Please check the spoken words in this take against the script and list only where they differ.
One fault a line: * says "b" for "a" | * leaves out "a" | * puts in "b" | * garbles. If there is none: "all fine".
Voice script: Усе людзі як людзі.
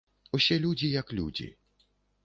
all fine